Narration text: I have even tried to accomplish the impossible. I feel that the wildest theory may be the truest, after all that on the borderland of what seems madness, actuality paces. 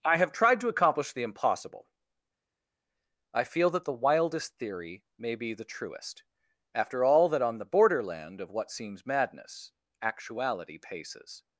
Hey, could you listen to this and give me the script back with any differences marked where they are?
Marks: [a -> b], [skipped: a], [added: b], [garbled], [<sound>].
I have [skipped: even] tried to accomplish the impossible. I feel that the wildest theory may be the truest, after all that on the borderland of what seems madness, actuality paces.